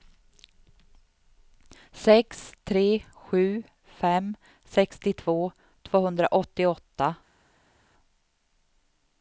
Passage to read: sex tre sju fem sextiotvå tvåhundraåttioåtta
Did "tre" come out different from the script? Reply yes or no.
no